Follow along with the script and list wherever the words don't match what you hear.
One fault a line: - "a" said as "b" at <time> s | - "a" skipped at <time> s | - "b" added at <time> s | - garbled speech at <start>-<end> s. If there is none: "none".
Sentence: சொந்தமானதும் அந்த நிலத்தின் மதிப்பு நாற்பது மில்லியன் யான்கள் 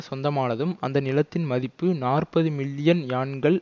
none